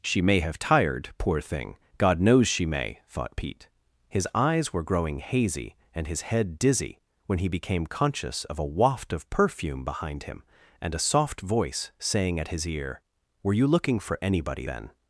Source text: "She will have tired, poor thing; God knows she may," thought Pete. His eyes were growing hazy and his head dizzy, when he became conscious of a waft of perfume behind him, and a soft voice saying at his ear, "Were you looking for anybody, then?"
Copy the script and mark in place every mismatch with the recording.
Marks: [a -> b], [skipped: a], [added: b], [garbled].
"She [will -> may] have tired, poor thing; God knows she may," thought Pete. His eyes were growing hazy and his head dizzy, when he became conscious of a waft of perfume behind him, and a soft voice saying at his ear, "Were you looking for anybody, then?"